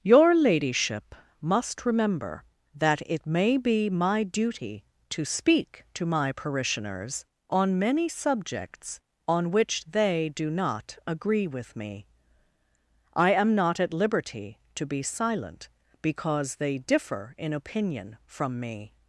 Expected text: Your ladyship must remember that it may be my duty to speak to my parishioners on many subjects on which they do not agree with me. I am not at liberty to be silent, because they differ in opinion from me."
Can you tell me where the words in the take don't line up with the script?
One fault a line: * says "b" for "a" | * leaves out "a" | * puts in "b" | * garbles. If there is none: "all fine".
all fine